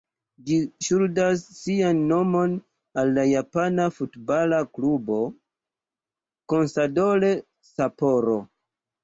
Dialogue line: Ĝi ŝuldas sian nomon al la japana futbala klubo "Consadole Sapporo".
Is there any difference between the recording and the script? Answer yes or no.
no